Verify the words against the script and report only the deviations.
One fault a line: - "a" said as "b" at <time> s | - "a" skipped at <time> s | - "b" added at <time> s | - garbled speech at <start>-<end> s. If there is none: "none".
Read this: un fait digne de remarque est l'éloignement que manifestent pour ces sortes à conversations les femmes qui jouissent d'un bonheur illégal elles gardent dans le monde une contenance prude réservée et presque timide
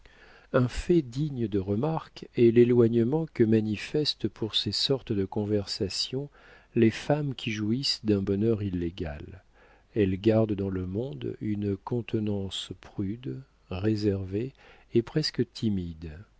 - "à" said as "de" at 5.1 s